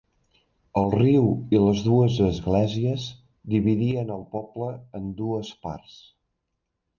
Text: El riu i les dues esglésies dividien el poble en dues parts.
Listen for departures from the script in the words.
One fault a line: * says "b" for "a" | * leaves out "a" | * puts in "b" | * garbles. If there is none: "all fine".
all fine